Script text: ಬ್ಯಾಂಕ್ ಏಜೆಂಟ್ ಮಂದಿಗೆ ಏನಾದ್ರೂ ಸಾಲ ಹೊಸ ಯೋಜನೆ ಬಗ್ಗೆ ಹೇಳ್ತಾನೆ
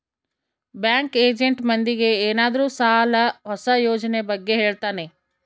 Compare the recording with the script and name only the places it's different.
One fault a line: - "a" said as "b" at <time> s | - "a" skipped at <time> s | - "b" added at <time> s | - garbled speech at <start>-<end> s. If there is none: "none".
none